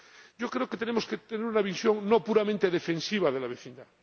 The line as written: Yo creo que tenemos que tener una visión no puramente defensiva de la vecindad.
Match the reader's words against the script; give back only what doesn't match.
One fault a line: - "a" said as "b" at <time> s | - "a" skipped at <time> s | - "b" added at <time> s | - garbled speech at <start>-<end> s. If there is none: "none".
none